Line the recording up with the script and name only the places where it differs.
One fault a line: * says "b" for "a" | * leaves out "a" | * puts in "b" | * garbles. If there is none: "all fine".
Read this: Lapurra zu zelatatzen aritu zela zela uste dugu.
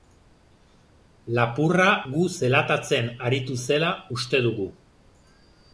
* says "gu" for "zu"
* leaves out "zela"